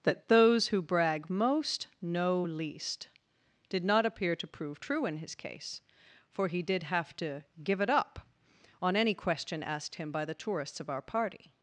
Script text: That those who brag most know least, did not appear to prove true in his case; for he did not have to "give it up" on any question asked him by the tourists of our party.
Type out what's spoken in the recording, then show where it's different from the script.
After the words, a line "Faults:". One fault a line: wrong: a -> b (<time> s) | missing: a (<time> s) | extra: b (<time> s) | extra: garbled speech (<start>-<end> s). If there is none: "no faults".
That those who brag most know least, did not appear to prove true in his case; for he did have to "give it up" on any question asked him by the tourists of our party.
Faults:
missing: not (6.8 s)